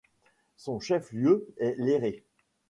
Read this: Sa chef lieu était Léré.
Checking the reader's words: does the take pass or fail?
fail